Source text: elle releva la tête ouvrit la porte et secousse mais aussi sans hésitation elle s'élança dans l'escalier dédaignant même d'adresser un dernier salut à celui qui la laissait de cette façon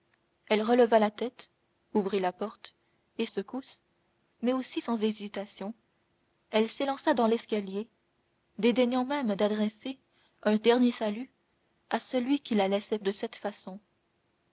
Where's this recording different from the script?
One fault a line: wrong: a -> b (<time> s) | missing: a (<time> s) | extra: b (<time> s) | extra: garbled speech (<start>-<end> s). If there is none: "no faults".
no faults